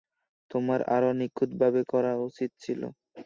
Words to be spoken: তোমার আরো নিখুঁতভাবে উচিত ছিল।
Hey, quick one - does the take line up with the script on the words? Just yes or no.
no